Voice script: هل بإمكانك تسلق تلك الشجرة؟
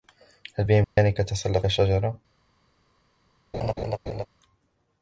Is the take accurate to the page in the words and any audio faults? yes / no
no